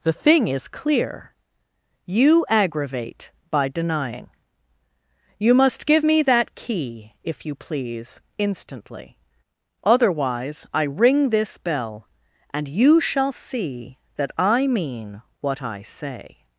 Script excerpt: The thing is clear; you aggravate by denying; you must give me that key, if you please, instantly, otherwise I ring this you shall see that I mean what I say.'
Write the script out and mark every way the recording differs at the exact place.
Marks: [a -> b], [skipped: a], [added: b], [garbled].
The thing is clear; you aggravate by denying; you must give me that key, if you please, instantly, otherwise I ring this [added: bell and] you shall see that I mean what I say.'